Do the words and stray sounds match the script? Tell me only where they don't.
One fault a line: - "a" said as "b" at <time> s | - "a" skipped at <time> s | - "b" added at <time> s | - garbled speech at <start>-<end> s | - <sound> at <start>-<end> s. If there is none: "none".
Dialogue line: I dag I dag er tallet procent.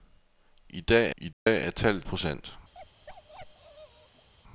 - dropout at 1.3-1.5 s
- bark at 2.7-4.3 s